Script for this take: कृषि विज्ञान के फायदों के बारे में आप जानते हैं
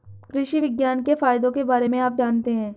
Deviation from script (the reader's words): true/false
false